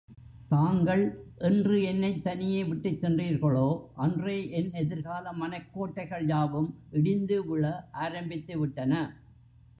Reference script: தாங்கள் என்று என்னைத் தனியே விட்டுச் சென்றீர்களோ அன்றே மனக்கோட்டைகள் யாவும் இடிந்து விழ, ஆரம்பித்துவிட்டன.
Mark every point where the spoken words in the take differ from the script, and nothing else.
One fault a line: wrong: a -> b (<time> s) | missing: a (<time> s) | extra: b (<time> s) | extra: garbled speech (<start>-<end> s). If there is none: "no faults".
extra: என் எதிர்கால (4.5 s)